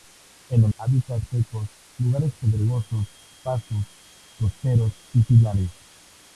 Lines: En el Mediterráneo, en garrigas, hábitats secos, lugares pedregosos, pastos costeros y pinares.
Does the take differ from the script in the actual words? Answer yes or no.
yes